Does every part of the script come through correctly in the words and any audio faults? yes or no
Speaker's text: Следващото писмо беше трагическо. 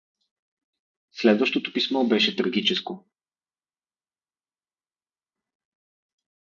yes